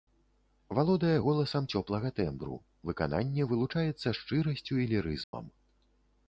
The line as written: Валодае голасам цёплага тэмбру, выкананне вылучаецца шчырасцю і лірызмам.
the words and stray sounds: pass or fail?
fail